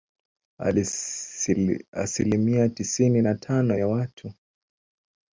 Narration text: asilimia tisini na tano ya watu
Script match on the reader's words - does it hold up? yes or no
yes